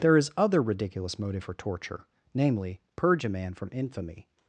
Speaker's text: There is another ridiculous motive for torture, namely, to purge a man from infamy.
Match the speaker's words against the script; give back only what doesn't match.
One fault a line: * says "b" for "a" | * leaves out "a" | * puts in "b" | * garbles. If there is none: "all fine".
* says "other" for "another"
* leaves out "to"